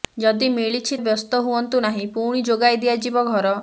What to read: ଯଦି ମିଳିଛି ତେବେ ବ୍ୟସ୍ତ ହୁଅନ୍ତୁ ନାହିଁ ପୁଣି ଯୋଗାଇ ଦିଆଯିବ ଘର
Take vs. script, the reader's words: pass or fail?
fail